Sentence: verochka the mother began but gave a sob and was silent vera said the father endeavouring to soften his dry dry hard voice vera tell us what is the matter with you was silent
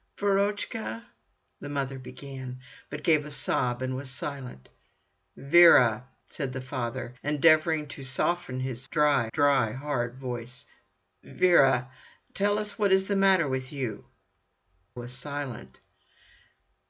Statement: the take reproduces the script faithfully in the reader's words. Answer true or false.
true